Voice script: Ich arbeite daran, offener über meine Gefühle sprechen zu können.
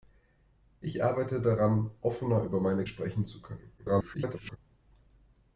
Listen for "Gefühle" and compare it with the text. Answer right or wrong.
wrong